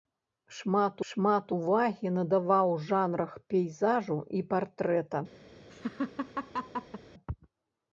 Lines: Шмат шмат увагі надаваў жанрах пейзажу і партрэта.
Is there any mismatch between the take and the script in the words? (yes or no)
no